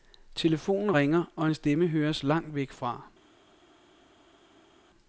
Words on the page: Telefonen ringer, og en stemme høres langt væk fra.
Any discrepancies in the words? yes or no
no